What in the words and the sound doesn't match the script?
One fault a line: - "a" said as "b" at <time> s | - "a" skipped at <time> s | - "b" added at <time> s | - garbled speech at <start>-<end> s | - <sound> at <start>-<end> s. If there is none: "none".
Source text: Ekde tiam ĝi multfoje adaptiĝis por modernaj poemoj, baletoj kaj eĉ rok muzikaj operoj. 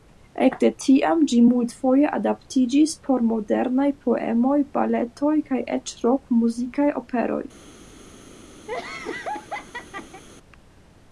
- laugh at 8.7-10.2 s